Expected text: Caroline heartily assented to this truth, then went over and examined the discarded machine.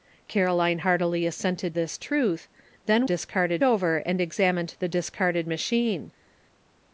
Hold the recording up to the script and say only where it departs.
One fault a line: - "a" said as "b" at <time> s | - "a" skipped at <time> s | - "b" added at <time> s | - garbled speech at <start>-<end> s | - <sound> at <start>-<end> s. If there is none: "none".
- "to" skipped at 1.8 s
- "went" said as "discarded" at 3.0 s